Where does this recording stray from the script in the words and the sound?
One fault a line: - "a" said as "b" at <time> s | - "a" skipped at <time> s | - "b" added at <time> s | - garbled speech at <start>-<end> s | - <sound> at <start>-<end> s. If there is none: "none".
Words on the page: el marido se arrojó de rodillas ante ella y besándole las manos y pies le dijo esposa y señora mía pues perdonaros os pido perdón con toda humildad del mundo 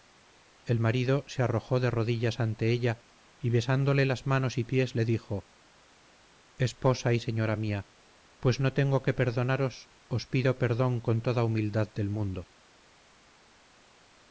- "no tengo que" added at 8.6 s